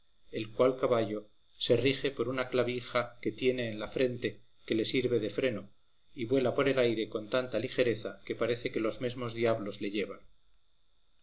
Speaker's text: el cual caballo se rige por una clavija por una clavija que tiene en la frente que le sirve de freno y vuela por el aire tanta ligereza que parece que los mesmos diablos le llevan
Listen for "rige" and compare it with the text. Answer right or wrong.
right